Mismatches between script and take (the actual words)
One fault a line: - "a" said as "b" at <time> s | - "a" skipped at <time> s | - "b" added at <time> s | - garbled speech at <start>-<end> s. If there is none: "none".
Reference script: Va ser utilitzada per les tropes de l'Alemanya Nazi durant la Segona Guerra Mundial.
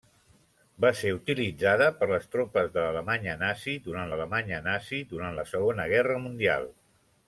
- "l'Alemanya Nazi durant" added at 4.1 s